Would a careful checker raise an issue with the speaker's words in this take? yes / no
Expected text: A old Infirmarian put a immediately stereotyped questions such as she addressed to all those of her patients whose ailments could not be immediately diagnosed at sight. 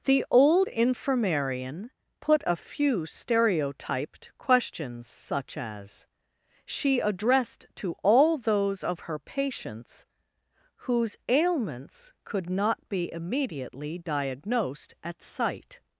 yes